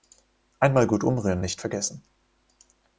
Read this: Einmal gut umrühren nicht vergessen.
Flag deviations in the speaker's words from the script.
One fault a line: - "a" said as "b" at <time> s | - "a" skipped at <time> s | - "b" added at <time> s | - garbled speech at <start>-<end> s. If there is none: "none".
none